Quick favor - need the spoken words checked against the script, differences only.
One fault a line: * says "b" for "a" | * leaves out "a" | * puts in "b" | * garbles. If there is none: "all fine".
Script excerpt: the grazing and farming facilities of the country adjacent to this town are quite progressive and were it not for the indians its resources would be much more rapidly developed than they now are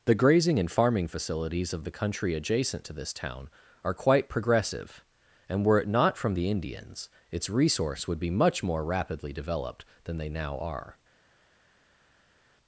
* says "from" for "for"
* says "resource" for "resources"